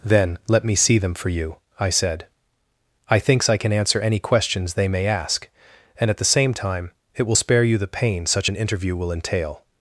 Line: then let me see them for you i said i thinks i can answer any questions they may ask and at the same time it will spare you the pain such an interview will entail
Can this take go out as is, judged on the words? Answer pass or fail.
pass